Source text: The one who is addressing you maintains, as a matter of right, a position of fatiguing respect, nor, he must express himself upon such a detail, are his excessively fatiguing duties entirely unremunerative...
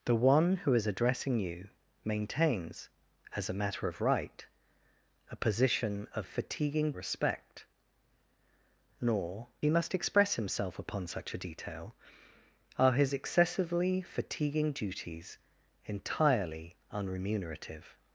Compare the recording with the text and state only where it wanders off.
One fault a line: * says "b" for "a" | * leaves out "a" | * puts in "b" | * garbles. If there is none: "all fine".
all fine